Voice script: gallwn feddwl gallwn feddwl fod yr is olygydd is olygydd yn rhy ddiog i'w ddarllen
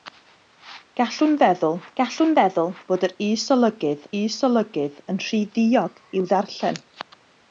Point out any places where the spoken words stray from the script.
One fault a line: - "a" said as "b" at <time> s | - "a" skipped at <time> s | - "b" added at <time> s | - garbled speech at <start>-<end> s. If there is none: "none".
none